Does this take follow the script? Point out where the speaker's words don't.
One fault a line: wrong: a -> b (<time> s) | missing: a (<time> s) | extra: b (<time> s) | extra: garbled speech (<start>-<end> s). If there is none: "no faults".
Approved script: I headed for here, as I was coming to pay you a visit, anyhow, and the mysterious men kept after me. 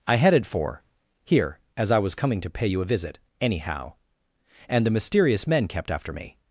no faults